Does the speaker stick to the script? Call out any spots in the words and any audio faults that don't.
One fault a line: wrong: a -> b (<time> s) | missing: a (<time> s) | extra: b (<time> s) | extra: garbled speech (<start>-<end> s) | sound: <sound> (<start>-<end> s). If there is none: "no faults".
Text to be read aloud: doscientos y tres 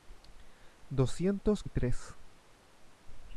no faults